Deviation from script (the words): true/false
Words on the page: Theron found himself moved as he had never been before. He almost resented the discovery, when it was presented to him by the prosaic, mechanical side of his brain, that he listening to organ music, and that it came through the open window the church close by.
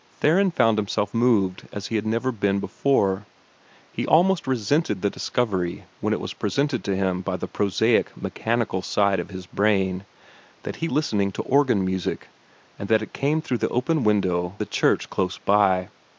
false